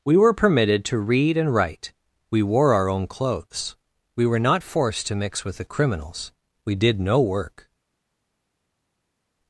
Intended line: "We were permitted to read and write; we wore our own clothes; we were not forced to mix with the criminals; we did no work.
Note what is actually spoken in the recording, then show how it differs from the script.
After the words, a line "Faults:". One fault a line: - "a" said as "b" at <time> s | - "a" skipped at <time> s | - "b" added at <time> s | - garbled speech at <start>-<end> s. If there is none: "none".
"We were permitted to read and write; we wore our own clothes; we were not forced to mix with the criminals; we did no work.
Faults:
none